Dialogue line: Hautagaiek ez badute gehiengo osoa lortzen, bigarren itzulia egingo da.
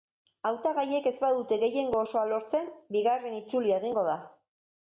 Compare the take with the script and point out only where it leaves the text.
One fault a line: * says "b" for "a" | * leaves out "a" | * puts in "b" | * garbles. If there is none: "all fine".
all fine